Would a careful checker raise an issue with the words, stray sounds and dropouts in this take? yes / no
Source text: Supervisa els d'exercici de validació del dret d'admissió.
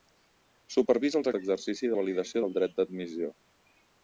no